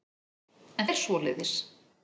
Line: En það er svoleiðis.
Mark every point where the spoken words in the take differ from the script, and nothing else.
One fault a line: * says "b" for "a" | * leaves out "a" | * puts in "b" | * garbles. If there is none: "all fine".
* leaves out "það"